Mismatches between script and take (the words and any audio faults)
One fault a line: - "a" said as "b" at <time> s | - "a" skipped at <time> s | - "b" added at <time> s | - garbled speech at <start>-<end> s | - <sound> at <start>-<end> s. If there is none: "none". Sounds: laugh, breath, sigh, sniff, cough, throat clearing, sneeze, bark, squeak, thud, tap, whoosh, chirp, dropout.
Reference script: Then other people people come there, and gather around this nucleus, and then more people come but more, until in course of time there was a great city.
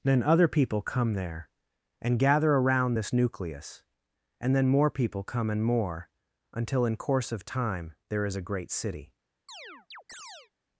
- "people" skipped at 0.8 s
- "but" said as "and" at 5.5 s
- "was" said as "is" at 8.2 s
- chirp at 9.5-10.5 s